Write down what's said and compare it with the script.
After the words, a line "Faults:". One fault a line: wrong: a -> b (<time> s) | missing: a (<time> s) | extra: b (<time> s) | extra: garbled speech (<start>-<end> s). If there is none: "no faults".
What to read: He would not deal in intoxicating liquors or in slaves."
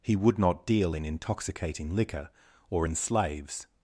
He would not deal in intoxicating liquor or in slaves."
Faults:
wrong: liquors -> liquor (1.9 s)